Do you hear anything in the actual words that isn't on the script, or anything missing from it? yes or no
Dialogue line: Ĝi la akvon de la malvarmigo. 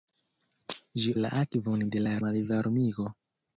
no